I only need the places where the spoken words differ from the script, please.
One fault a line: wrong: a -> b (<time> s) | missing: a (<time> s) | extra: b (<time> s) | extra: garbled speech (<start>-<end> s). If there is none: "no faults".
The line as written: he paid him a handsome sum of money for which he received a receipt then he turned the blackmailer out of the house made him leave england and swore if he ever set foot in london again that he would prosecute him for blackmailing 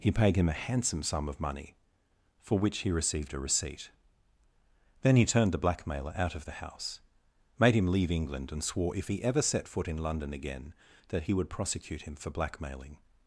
no faults